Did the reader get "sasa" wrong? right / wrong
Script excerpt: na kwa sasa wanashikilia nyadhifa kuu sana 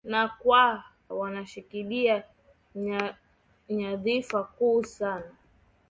wrong